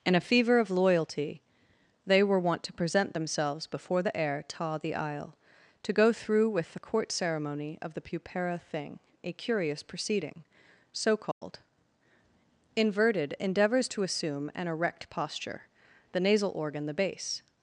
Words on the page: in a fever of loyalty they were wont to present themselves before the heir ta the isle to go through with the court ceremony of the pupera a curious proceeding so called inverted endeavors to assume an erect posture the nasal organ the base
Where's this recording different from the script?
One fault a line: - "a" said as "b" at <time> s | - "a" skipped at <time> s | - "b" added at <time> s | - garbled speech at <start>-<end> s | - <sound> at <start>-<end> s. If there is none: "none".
- "thing" added at 8.6 s
- dropout at 11.3-11.4 s